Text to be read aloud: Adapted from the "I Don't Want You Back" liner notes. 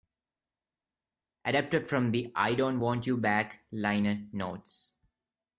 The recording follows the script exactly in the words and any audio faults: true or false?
true